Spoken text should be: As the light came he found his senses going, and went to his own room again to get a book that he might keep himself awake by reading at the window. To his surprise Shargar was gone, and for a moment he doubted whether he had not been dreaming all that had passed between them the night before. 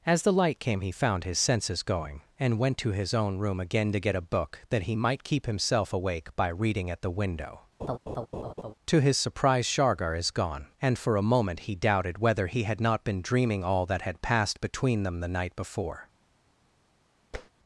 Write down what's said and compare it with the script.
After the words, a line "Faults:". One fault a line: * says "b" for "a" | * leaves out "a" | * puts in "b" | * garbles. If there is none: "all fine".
As the light came he found his senses going, and went to his own room again to get a book that he might keep himself awake by reading at the window. To his surprise Shargar is gone, and for a moment he doubted whether he had not been dreaming all that had passed between them the night before.
Faults:
* says "is" for "was"